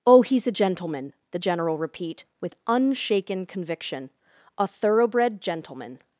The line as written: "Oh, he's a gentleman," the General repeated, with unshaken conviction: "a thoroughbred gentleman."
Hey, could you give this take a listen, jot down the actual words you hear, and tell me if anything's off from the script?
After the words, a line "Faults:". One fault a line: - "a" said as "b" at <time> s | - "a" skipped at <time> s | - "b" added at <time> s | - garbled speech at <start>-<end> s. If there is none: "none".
"Oh, he's a gentleman," the General repeat, with unshaken conviction: "a thoroughbred gentleman."
Faults:
- "repeated" said as "repeat" at 1.8 s